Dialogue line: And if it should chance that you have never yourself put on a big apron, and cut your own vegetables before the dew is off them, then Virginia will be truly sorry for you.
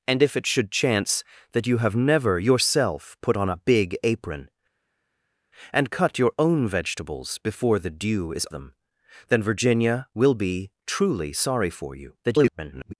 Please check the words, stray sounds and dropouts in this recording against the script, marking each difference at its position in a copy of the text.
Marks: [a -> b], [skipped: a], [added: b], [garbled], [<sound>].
And if it should chance that you have never yourself put on a big apron, and cut your own vegetables before the dew is [skipped: off] them, then Virginia will be truly sorry for you. [garbled]